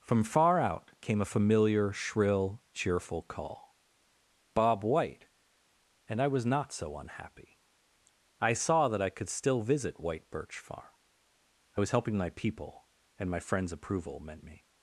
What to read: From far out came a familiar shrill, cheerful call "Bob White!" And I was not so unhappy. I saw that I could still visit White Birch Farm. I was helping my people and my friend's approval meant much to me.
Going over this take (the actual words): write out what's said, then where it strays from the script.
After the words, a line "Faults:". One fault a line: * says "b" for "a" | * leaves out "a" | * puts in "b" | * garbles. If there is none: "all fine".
From far out came a familiar shrill, cheerful call "Bob White!" And I was not so unhappy. I saw that I could still visit White Birch Farm. I was helping my people and my friend's approval meant me.
Faults:
* leaves out "much to"